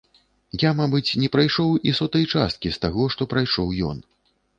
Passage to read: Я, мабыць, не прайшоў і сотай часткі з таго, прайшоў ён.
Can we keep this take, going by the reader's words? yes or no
no